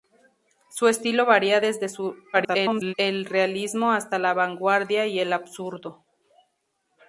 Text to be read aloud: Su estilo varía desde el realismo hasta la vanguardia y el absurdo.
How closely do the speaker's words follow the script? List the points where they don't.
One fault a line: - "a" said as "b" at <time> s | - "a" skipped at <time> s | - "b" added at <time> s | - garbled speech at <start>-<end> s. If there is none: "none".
- garbled speech at 2.3-2.9 s